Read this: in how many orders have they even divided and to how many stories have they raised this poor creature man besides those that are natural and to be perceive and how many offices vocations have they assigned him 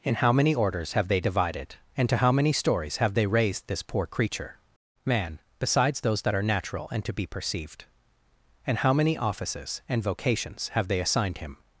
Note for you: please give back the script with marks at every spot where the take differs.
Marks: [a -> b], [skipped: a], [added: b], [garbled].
in how many orders have they [skipped: even] divided and to how many stories have they raised this poor creature man besides those that are natural and to be [perceive -> perceived] and how many offices [added: and] vocations have they assigned him